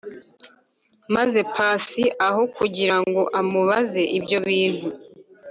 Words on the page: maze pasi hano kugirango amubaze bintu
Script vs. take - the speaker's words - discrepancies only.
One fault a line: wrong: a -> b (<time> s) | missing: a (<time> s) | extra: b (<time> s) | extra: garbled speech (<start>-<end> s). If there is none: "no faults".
wrong: hano -> aho (2.3 s)
extra: ibyo (4.2 s)